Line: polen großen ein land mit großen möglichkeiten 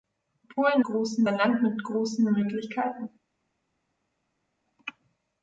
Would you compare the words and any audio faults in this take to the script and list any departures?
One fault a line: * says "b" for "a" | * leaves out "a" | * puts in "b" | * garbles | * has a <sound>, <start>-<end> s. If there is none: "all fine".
all fine